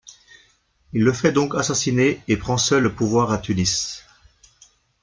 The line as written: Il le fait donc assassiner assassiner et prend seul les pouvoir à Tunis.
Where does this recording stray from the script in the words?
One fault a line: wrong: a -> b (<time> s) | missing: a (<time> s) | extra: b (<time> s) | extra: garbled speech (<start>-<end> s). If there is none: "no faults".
missing: assassiner (2.2 s)
wrong: les -> le (2.8 s)